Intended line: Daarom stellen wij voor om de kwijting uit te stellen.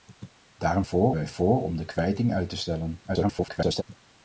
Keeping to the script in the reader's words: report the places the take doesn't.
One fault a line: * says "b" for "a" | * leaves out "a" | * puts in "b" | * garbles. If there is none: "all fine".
* says "voor" for "stellen"
* garbles